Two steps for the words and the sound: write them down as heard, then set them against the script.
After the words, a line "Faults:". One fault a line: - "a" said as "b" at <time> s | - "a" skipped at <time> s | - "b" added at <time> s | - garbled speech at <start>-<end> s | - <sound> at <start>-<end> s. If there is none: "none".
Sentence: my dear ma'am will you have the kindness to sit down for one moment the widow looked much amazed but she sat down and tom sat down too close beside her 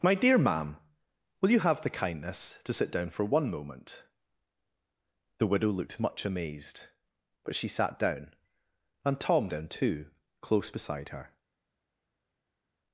my dear ma'am will you have the kindness to sit down for one moment the widow looked much amazed but she sat down and tom down too close beside her
Faults:
- "sat" skipped at 9.5 s